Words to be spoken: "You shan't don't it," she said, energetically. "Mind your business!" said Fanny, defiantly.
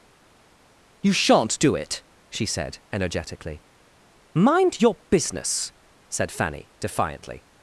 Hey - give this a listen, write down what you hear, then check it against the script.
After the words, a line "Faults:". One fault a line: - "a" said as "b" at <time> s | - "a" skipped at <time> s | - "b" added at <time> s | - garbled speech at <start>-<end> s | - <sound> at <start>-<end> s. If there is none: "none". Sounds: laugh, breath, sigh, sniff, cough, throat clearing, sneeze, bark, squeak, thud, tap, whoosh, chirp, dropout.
"You shan't do it," she said, energetically. "Mind your business!" said Fanny, defiantly.
Faults:
- "don't" said as "do" at 1.6 s